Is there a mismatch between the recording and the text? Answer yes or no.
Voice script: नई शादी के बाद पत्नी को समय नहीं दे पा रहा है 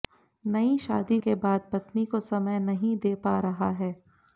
no